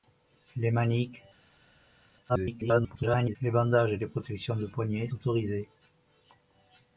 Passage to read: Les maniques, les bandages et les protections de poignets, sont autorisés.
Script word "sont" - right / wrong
wrong